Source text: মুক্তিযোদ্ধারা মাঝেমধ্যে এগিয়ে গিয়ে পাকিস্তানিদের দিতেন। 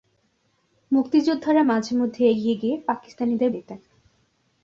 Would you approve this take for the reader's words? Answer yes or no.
yes